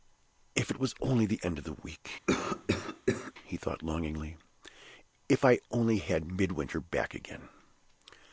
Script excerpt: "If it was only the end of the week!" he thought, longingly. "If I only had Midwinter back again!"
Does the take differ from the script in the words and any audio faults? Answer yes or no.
yes